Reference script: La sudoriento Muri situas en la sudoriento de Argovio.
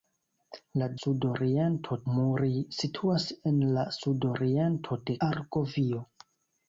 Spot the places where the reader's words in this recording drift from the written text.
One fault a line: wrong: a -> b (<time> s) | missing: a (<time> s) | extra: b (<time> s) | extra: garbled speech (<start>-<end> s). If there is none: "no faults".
no faults